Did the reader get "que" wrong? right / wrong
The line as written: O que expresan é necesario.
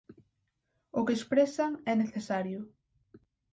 right